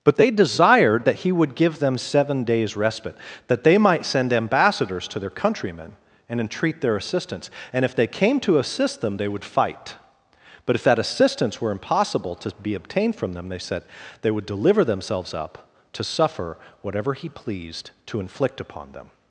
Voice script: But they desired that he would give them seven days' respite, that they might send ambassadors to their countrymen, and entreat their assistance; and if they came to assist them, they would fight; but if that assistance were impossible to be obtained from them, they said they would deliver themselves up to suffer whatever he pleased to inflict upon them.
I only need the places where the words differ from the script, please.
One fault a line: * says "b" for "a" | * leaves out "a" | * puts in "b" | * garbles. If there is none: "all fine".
all fine